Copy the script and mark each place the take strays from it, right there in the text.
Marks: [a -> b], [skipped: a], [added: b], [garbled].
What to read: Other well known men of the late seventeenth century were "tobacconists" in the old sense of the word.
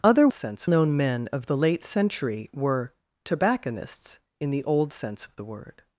Other [well -> sense] known men of the late [skipped: seventeenth] century were "tobacconists" in the old sense of the word.